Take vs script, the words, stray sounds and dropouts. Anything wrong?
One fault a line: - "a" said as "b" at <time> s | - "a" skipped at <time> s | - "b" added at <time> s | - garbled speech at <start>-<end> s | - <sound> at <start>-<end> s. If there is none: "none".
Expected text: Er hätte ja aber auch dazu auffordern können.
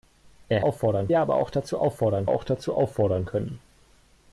- "hätte" said as "auffordern" at 0.6 s
- "auch dazu auffordern" added at 2.3 s